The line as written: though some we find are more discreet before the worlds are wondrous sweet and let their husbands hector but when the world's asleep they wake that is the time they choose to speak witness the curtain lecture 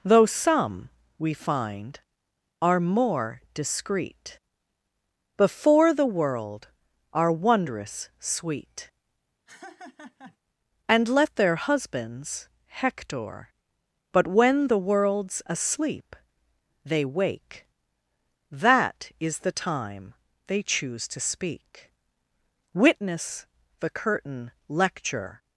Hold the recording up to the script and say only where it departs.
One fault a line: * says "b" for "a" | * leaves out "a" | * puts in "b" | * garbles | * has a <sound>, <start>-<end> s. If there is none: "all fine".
* says "world" for "worlds"
* has a laugh, 9.5-10.4 s